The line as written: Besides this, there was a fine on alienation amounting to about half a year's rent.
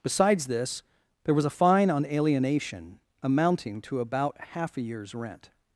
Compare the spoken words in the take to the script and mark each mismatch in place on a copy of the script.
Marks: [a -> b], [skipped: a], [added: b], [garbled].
Besides this, there was a fine on alienation amounting to about half a year's rent.